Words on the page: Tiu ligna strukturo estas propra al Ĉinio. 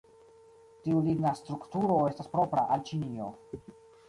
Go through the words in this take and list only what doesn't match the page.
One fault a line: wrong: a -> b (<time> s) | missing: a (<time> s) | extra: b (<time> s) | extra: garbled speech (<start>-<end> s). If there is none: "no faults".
no faults